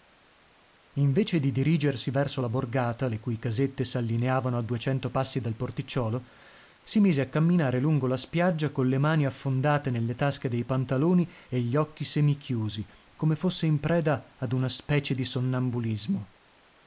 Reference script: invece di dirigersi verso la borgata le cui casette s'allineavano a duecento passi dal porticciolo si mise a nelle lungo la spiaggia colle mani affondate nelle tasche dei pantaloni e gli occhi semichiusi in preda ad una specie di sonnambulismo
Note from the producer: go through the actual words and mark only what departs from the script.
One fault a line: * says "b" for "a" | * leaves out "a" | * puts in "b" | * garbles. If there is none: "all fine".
* says "camminare" for "nelle"
* puts in "come fosse"